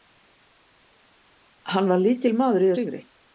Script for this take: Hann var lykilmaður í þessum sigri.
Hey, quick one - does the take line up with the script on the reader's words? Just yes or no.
no